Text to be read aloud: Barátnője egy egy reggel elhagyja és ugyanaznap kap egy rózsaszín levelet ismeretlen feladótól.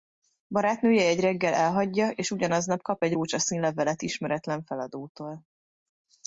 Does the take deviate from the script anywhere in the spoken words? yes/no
yes